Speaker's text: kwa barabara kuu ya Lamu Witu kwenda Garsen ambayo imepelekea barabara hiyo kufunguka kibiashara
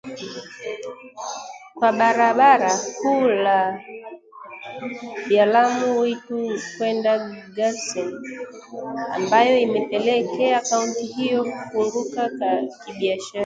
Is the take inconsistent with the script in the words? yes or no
yes